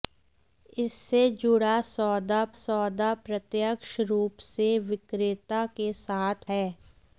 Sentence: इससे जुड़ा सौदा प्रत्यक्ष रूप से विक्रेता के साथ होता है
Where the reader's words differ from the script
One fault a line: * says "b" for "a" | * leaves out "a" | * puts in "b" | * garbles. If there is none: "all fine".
* puts in "सौदा"
* leaves out "होता"